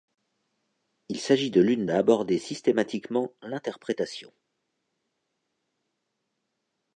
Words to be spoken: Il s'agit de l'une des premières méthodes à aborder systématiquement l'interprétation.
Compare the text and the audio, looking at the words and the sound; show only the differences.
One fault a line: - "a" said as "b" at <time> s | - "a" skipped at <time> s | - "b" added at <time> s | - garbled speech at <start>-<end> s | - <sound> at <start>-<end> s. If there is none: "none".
- "des premières méthodes" skipped at 1.9 s